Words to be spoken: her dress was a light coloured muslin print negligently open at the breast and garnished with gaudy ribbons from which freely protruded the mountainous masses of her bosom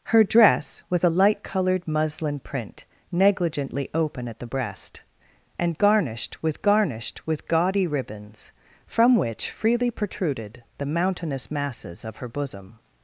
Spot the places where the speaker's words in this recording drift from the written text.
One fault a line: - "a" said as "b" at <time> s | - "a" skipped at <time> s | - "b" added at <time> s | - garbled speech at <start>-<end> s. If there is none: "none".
- "garnished with" added at 6.6 s